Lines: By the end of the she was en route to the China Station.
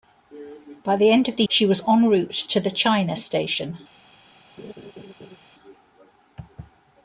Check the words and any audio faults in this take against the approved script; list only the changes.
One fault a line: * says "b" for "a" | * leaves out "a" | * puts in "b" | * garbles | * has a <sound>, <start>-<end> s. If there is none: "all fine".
* has a laugh, 4.6-5.4 s